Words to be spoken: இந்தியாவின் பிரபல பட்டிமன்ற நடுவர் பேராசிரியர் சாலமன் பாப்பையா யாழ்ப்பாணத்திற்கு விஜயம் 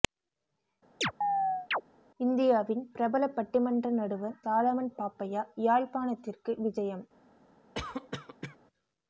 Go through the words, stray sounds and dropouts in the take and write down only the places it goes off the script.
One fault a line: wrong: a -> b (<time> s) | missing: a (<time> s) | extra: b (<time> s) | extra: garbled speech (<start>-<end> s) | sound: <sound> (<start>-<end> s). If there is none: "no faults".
sound: chirp (1.0-1.8 s)
missing: பேராசிரியர் (4.4 s)
sound: cough (7.7-8.6 s)